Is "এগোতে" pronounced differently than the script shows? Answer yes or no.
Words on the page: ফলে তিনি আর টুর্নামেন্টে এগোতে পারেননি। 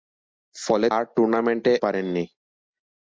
yes